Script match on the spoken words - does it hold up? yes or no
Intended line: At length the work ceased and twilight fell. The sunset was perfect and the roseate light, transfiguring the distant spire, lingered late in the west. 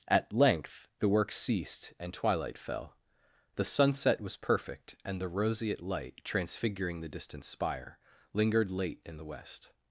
yes